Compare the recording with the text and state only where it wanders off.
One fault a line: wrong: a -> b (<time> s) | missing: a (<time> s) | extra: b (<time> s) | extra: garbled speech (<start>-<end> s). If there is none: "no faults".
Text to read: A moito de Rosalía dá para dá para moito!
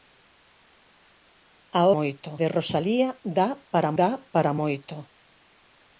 no faults